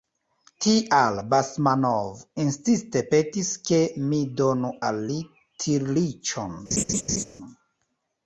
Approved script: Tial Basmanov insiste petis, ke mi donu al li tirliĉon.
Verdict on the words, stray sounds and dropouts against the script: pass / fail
fail